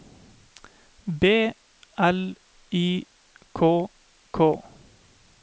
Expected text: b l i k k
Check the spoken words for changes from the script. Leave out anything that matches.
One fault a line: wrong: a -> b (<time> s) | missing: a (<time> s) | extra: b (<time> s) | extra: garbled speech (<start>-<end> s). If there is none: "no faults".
no faults